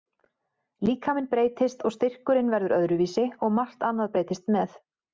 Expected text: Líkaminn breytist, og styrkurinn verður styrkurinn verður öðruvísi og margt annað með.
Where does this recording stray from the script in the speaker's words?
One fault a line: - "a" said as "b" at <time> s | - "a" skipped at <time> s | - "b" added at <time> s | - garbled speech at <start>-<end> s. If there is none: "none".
- "styrkurinn verður" skipped at 2.8 s
- "breytist" added at 4.2 s